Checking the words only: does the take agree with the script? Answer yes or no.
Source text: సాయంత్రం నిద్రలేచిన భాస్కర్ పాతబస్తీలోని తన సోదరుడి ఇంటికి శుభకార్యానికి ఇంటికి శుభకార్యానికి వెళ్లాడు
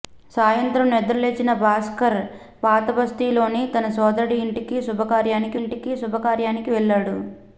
yes